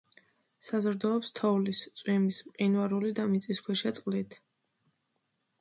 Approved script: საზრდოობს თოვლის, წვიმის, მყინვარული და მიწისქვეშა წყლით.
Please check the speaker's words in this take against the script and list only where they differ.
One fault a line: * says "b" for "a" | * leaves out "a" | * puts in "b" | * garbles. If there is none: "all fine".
all fine